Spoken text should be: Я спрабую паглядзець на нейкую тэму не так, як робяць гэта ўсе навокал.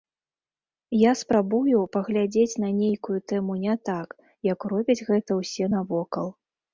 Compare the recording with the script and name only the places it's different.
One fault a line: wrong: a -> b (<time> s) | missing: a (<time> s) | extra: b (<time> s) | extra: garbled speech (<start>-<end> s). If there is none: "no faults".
no faults